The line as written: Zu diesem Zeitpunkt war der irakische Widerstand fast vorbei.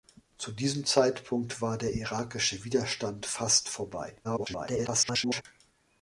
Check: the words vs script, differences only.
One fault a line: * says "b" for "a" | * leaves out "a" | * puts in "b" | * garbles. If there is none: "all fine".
* garbles